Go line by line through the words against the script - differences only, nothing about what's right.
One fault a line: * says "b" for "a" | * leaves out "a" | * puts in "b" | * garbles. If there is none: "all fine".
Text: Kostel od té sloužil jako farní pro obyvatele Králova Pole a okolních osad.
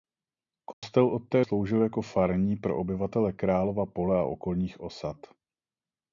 all fine